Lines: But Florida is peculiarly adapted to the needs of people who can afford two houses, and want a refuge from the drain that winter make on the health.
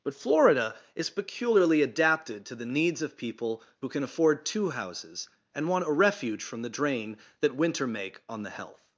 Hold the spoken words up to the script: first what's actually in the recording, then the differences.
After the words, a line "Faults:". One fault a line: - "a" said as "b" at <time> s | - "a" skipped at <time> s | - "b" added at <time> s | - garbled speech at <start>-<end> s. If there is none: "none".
But Florida is peculiarly adapted to the needs of people who can afford two houses, and want a refuge from the drain that winter make on the health.
Faults:
none